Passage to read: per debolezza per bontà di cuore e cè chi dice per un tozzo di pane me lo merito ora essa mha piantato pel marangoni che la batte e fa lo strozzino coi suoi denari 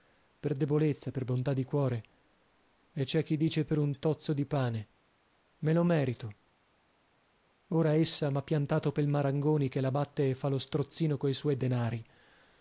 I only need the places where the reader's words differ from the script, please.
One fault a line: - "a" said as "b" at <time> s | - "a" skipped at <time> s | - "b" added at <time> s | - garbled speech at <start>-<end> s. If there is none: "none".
none